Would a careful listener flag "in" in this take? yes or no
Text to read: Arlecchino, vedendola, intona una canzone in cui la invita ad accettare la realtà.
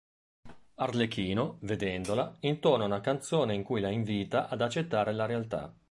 no